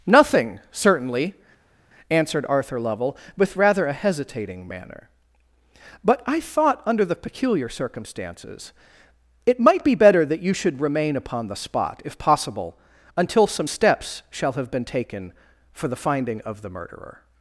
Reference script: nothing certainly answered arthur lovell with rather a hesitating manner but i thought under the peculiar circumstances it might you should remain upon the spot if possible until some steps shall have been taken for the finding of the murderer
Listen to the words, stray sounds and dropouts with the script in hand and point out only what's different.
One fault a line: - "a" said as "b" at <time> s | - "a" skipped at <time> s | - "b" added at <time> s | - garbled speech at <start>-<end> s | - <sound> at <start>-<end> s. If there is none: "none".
- "be better that" added at 9.8 s